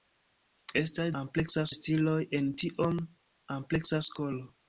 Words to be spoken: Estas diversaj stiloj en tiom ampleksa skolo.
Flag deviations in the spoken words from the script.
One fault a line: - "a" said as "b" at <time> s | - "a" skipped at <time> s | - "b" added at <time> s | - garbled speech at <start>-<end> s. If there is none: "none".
- "diversaj" said as "ampleksa" at 1.2 s